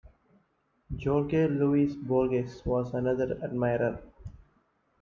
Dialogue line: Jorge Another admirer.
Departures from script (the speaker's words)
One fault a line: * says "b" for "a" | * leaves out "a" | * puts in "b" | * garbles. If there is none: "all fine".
* puts in "Luis Borges was"